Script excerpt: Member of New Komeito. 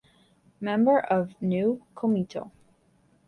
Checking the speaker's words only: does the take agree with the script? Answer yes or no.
yes